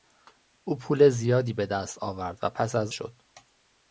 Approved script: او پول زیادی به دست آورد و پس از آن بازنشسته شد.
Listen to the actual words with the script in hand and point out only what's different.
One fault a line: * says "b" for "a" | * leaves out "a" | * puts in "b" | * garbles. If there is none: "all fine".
* leaves out "آن بازنشسته"